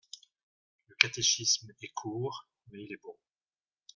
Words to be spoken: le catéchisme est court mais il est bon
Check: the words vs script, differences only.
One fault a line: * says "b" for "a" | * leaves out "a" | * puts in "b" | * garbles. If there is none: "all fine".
all fine